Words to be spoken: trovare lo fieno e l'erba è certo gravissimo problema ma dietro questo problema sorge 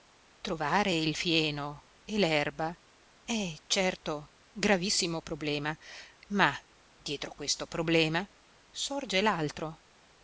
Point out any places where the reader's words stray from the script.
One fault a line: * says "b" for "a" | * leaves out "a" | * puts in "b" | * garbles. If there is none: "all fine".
* says "il" for "lo"